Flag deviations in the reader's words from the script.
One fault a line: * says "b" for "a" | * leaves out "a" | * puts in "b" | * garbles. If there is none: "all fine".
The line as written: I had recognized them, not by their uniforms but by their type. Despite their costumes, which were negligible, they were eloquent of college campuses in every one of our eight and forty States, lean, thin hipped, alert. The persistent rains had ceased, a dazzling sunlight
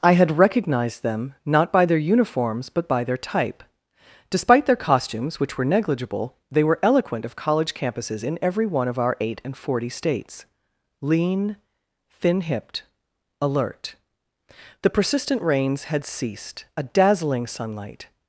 all fine